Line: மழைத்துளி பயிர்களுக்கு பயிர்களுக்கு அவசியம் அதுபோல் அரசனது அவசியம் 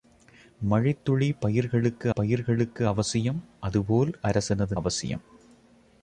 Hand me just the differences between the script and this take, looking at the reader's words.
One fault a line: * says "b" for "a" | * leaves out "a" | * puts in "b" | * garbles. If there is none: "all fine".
all fine